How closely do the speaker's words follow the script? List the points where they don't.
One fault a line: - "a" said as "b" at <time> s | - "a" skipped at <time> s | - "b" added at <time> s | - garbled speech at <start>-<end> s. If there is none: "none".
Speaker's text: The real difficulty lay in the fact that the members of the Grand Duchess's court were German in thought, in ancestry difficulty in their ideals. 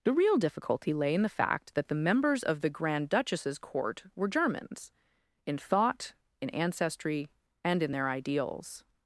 - "German" said as "Germans" at 4.3 s
- "difficulty" said as "and" at 7.6 s